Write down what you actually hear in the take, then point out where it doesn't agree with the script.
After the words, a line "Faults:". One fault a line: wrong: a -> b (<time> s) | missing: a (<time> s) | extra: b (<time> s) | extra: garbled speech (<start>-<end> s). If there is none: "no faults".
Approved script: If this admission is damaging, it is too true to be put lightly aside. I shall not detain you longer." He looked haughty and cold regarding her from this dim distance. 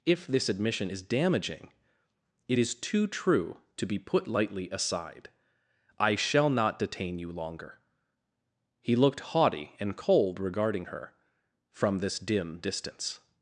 If this admission is damaging, it is too true to be put lightly aside. I shall not detain you longer." He looked haughty and cold regarding her from this dim distance.
Faults:
no faults